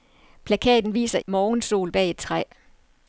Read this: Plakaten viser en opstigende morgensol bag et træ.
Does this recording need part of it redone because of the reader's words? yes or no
yes